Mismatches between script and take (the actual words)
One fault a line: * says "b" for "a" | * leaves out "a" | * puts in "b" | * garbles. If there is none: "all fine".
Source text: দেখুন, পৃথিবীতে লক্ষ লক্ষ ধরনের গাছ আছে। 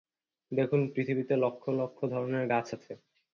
all fine